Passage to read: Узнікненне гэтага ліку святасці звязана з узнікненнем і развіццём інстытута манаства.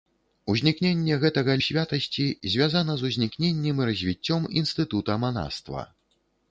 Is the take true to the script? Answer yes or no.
no